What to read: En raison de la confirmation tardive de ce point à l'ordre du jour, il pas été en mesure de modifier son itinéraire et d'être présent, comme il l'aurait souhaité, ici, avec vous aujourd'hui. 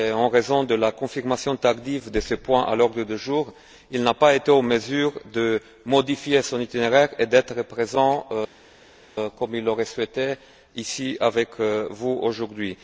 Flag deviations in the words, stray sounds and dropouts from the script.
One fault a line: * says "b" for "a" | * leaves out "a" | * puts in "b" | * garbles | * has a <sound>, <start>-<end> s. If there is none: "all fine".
* puts in "n'a"